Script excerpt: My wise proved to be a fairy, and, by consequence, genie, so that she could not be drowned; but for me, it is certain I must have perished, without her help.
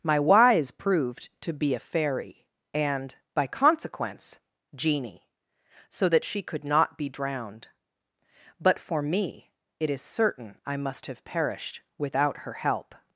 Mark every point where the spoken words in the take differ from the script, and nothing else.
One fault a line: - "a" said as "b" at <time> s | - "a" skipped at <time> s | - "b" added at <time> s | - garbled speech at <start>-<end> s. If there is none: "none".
none